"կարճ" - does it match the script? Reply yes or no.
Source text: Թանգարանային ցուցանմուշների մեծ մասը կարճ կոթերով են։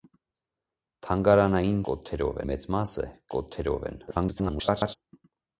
no